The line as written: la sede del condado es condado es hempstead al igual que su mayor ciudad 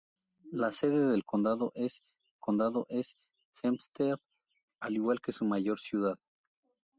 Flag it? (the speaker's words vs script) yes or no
no